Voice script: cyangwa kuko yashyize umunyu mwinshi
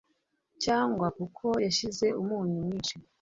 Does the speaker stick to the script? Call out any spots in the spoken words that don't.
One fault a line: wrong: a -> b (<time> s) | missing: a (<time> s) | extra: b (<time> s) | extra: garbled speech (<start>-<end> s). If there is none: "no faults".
no faults